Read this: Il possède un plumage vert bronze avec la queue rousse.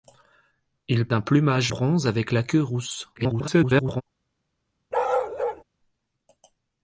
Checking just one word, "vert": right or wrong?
wrong